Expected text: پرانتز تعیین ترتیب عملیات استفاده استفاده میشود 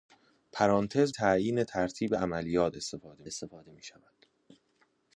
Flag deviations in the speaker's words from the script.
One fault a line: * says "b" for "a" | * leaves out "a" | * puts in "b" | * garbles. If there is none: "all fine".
all fine